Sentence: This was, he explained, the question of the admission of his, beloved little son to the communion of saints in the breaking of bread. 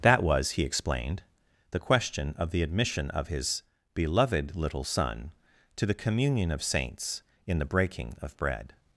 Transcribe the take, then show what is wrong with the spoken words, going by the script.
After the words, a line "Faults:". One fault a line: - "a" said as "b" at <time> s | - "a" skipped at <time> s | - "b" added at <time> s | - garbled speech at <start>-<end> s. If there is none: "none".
That was, he explained, the question of the admission of his, beloved little son to the communion of saints in the breaking of bread.
Faults:
- "This" said as "That" at 0.0 s